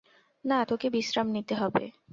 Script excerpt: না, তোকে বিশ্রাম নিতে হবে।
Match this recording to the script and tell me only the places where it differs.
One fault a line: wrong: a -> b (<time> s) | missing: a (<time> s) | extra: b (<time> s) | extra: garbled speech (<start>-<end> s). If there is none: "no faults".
no faults